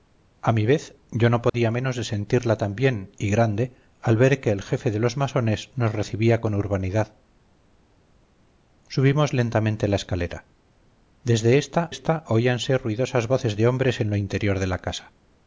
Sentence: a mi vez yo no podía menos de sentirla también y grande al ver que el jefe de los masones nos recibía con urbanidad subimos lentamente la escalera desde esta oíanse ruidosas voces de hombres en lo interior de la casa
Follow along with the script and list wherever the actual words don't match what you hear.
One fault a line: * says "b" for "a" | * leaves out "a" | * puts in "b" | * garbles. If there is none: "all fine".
* puts in "esta"